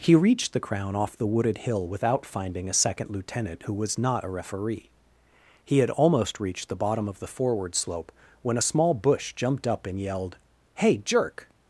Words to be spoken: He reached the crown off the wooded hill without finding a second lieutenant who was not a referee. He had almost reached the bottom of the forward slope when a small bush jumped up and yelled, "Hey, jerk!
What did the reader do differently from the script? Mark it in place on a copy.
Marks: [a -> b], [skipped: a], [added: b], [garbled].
He reached the crown off the wooded hill without finding a second lieutenant who was not a referee. He had almost reached the bottom of the forward slope when a small bush jumped up and yelled, "Hey, jerk!